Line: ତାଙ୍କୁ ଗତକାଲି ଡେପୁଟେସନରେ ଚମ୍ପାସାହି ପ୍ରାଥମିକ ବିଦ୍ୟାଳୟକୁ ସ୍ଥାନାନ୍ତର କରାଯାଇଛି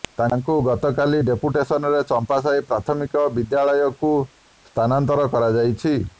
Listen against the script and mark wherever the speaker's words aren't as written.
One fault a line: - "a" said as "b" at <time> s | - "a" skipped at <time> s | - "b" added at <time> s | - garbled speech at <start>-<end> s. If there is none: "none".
none